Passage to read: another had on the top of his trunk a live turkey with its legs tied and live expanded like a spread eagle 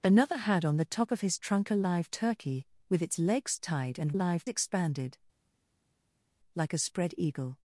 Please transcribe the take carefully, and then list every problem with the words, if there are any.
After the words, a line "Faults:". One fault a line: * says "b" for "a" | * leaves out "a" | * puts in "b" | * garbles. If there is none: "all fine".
another had on the top of his trunk a live turkey with its legs tied and live expanded like a spread eagle
Faults:
all fine